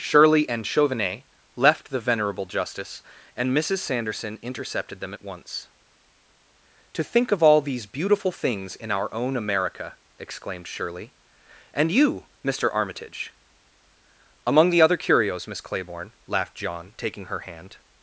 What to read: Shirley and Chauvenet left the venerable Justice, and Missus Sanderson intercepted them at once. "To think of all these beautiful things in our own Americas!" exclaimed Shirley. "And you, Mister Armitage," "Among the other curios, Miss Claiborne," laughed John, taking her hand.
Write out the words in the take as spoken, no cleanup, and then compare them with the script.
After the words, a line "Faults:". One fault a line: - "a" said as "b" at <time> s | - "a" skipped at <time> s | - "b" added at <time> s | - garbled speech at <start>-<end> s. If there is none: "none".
Shirley and Chauvenet left the venerable Justice, and Missus Sanderson intercepted them at once. "To think of all these beautiful things in our own America!" exclaimed Shirley. "And you, Mister Armitage," "Among the other curios, Miss Claiborne," laughed John, taking her hand.
Faults:
- "Americas" said as "America" at 9.3 s